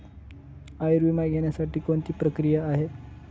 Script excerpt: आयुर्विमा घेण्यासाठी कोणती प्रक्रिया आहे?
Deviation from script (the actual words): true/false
false